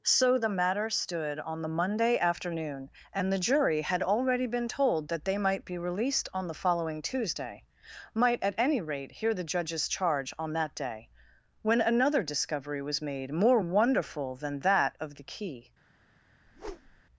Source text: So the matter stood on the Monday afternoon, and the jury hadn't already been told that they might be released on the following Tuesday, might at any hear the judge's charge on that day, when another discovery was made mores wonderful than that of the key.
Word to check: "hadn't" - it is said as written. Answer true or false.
false